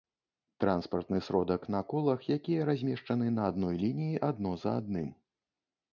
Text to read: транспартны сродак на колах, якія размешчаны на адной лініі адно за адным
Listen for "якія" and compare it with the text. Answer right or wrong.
right